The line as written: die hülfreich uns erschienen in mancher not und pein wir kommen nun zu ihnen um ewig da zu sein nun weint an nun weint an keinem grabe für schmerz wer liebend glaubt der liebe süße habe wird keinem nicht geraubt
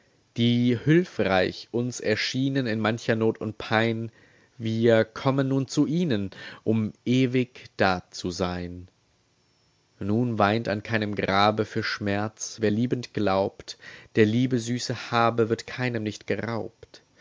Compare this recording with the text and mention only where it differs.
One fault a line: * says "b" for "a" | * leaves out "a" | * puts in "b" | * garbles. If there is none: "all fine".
* leaves out "nun weint an"